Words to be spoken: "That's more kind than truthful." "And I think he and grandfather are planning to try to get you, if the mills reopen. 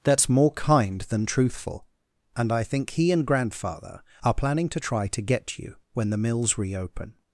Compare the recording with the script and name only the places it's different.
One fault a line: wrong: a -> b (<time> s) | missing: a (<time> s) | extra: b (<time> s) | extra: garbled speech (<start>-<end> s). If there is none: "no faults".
wrong: if -> when (5.9 s)